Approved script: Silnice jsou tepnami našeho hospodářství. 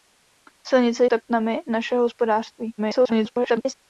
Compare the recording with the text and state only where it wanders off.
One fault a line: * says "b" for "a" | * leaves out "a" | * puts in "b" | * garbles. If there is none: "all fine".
* leaves out "jsou"
* garbles